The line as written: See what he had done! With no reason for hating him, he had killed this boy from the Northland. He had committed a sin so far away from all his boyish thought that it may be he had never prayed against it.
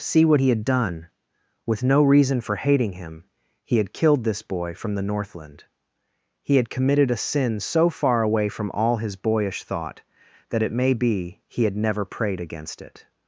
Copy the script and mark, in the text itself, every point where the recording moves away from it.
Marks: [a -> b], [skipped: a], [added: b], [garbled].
See what he had done! With no reason for hating him, he had killed this boy from the Northland. He had committed a sin so far away from all his boyish thought that it may be he had never prayed against it.